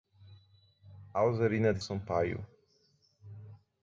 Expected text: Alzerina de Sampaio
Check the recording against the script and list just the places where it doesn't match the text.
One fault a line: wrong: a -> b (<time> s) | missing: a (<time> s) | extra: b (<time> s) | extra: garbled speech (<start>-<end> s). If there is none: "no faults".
no faults